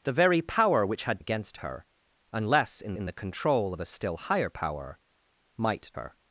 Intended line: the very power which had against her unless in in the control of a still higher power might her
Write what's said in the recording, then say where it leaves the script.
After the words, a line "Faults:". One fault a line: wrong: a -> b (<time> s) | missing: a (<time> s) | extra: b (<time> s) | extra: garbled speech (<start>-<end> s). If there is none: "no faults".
the very power which had against her unless in in the control of a still higher power might her
Faults:
no faults